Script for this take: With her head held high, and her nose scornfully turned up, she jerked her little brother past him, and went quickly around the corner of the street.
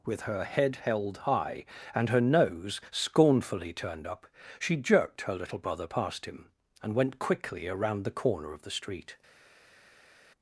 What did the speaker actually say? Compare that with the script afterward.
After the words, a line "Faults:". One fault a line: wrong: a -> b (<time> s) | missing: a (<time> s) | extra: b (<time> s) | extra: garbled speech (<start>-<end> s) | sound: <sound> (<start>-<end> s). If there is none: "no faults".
With her head held high, and her nose scornfully turned up, she jerked her little brother past him, and went quickly around the corner of the street.
Faults:
no faults